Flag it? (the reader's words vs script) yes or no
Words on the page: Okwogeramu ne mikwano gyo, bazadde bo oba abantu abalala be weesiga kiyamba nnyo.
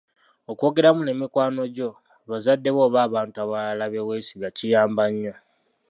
no